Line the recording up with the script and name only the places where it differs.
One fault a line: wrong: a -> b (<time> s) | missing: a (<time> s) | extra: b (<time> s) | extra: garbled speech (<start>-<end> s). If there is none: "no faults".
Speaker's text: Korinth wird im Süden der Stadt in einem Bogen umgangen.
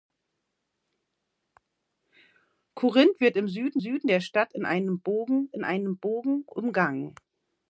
extra: Süden (3.8 s)
extra: in einem Bogen (5.5 s)